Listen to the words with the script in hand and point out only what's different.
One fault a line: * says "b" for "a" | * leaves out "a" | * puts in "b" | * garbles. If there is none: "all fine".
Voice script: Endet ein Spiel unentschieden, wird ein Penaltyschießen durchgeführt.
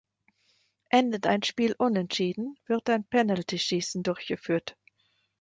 all fine